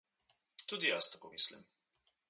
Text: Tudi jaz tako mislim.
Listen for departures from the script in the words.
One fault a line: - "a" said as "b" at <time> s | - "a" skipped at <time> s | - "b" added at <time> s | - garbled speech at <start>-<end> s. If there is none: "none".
none